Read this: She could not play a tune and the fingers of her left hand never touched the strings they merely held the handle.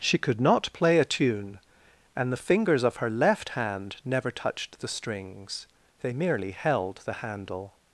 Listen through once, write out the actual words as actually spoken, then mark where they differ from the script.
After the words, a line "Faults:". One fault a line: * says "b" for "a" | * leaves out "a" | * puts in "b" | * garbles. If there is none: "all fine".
She could not play a tune and the fingers of her left hand never touched the strings they merely held the handle.
Faults:
all fine